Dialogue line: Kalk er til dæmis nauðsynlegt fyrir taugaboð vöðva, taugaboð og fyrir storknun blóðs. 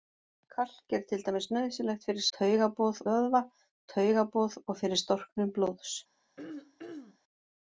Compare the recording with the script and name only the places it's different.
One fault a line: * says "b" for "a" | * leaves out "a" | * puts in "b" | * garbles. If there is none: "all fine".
all fine